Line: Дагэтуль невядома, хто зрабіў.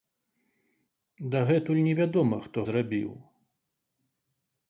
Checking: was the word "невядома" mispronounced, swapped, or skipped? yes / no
no